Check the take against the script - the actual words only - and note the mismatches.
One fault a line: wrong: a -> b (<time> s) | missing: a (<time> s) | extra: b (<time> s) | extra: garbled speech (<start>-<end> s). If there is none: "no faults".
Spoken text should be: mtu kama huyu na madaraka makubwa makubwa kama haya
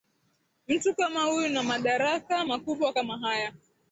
missing: makubwa (2.9 s)